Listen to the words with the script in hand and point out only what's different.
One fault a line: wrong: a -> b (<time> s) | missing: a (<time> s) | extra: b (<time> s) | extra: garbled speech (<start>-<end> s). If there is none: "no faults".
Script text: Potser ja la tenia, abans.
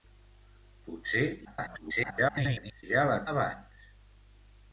extra: garbled speech (1.4-2.8 s)
missing: tenia (3.2 s)